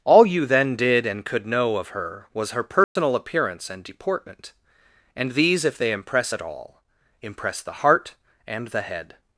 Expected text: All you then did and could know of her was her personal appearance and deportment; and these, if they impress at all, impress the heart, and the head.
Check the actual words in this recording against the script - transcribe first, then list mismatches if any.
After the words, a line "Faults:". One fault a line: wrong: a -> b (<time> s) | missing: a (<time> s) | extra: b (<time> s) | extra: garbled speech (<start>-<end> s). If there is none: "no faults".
All you then did and could know of her was her personal appearance and deportment; and these, if they impress at all, impress the heart, and the head.
Faults:
no faults